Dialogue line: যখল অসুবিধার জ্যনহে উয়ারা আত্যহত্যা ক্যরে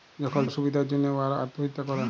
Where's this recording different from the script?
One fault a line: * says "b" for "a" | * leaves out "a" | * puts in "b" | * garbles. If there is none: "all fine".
all fine